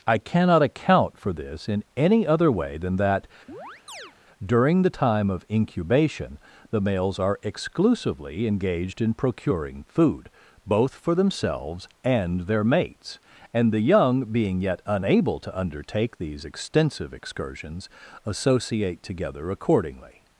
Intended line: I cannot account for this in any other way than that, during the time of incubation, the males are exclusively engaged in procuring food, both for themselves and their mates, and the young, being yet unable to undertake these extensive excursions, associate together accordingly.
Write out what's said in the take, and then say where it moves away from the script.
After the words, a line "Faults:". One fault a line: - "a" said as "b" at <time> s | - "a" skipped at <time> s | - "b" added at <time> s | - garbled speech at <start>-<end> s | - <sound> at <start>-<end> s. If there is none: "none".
I cannot account for this in any other way than that, during the time of incubation, the males are exclusively engaged in procuring food, both for themselves and their mates, and the young, being yet unable to undertake these extensive excursions, associate together accordingly.
Faults:
- chirp at 3.5-4.1 s